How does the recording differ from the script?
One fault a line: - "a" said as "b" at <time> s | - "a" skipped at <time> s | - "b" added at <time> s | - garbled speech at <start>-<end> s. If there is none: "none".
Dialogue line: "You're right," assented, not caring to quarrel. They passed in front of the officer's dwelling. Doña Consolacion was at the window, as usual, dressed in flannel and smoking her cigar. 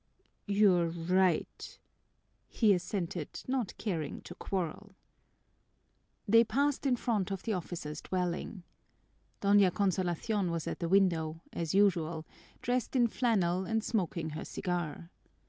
- "he" added at 2.5 s